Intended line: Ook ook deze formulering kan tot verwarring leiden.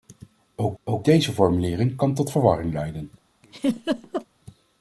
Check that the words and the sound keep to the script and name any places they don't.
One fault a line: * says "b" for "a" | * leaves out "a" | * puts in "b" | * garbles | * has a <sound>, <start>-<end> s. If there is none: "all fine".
* has a laugh, 3.4-4.3 s